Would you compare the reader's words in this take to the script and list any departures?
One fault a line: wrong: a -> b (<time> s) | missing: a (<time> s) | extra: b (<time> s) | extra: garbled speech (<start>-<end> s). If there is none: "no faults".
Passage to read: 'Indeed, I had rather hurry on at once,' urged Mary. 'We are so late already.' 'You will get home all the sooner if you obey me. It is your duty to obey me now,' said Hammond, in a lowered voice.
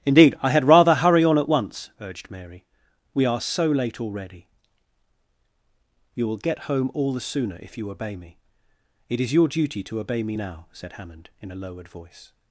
no faults